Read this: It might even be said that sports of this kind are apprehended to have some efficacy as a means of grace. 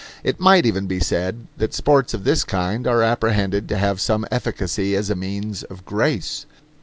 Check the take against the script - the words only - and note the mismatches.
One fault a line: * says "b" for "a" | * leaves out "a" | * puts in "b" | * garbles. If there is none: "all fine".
all fine